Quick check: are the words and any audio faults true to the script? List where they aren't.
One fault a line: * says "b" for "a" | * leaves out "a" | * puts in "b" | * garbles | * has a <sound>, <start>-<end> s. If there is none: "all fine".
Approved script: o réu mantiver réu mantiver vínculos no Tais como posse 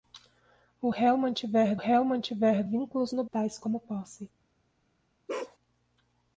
* has a bark, 5.3-5.6 s